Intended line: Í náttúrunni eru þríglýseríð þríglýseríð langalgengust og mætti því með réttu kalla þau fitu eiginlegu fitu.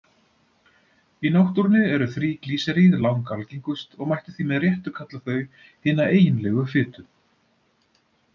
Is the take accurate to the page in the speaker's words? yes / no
no